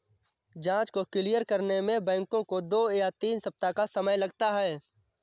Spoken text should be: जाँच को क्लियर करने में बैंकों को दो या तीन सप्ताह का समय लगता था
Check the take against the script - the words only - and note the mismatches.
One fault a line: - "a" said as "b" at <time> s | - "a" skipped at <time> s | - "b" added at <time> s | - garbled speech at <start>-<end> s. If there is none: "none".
- "था" said as "है" at 4.5 s